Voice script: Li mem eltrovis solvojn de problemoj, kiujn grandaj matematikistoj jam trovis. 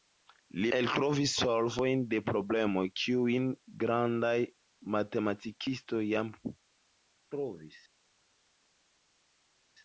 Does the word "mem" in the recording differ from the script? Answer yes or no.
yes